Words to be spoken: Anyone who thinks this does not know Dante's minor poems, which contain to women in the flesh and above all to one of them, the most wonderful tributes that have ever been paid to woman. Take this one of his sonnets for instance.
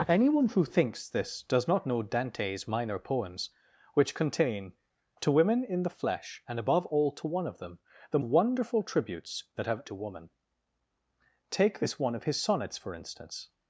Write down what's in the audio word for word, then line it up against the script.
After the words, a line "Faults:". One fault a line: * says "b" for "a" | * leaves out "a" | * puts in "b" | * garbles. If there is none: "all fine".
Anyone who thinks this does not know Dante's minor poems, which contain to women in the flesh and above all to one of them, the wonderful tributes that have to woman. Take this one of his sonnets for instance.
Faults:
* leaves out "most"
* leaves out "ever been paid"